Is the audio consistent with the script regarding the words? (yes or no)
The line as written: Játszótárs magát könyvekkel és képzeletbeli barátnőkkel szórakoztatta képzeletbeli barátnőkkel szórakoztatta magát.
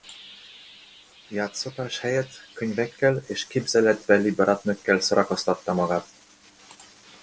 no